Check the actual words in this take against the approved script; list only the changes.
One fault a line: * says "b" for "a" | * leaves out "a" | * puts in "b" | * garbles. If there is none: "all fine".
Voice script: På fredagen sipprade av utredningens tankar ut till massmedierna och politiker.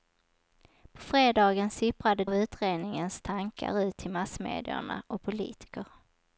all fine